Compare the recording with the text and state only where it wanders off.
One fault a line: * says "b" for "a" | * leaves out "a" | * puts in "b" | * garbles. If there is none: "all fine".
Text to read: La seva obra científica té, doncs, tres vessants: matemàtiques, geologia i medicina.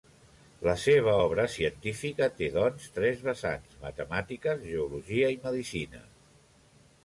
all fine